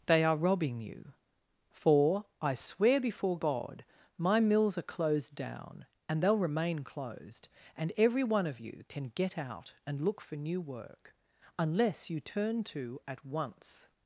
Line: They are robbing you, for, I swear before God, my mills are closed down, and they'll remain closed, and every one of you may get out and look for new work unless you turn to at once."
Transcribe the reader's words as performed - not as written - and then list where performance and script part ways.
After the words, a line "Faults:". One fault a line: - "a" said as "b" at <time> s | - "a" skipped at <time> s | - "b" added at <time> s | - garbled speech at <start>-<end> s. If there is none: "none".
They are robbing you, for, I swear before God, my mills are closed down, and they'll remain closed, and every one of you can get out and look for new work unless you turn to at once."
Faults:
- "may" said as "can" at 8.9 s